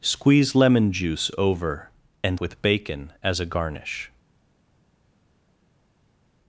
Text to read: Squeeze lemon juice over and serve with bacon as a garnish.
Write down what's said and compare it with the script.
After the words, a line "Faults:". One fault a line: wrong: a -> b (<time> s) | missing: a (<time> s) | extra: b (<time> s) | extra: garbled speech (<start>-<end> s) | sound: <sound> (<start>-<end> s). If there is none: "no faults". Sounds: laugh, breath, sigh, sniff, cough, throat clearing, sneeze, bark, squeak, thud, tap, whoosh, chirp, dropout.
Squeeze lemon juice over and with bacon as a garnish.
Faults:
missing: serve (2.4 s)